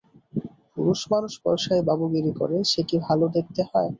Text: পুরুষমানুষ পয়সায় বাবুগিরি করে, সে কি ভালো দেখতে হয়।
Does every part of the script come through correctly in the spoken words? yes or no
yes